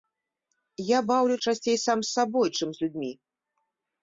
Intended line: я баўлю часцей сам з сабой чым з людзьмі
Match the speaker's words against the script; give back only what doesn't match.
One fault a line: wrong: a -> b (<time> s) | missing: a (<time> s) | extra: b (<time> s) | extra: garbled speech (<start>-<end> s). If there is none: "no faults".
no faults